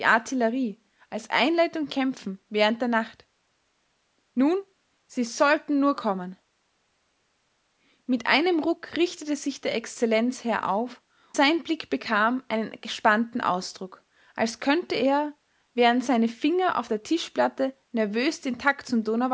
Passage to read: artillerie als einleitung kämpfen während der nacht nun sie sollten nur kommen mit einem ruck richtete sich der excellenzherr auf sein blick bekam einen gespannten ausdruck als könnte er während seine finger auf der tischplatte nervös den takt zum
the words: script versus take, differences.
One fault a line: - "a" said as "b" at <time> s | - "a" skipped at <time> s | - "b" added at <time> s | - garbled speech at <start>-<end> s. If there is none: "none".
none